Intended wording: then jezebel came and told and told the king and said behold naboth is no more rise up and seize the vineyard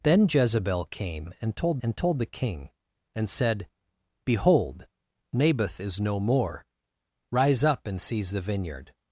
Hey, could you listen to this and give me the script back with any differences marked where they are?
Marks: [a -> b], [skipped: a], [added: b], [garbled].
then jezebel came and told and told the king and said behold naboth is no more rise up and seize the vineyard